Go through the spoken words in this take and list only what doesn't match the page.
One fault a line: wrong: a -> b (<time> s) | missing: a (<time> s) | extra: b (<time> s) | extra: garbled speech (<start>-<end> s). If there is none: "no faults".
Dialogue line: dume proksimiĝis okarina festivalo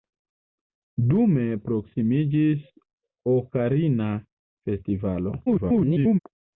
extra: garbled speech (5.5-6.2 s)